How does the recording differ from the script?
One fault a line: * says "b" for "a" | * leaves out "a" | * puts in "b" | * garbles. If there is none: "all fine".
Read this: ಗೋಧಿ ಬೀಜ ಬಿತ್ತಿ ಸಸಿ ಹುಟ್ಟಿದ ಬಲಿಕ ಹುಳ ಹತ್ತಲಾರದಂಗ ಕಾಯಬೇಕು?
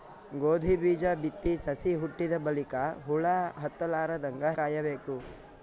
all fine